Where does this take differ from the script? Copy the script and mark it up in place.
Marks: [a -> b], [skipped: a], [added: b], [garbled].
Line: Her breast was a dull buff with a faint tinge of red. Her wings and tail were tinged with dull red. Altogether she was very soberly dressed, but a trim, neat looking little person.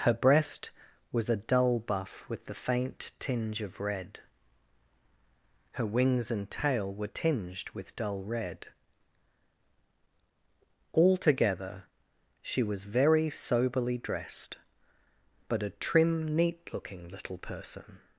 Her breast was a dull buff with [a -> the] faint tinge of red. Her wings and tail were tinged with dull red. Altogether she was very soberly dressed, but a trim, neat looking little person.